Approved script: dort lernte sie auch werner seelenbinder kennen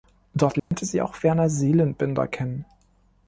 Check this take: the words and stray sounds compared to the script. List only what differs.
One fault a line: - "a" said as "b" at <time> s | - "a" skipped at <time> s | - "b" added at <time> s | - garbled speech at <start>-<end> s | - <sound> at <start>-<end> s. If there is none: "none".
- dropout at 0.6-0.7 s